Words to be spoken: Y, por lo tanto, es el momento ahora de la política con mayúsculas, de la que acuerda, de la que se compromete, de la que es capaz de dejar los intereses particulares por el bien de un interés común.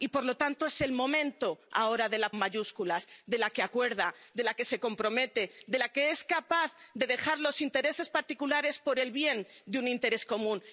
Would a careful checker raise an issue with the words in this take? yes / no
yes